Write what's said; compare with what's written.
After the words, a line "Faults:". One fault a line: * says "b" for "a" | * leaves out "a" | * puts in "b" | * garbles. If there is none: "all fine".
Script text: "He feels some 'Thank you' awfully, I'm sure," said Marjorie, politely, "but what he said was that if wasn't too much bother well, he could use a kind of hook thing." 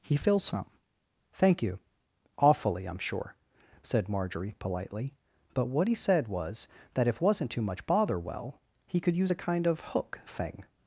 "He feels some 'Thank you' awfully, I'm sure," said Marjorie, politely, "but what he said was that if wasn't too much bother well, he could use a kind of hook thing."
Faults:
all fine